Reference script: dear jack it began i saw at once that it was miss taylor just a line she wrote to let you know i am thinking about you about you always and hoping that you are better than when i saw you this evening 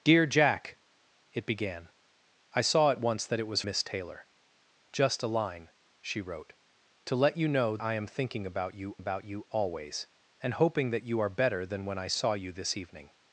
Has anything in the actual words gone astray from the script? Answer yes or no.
no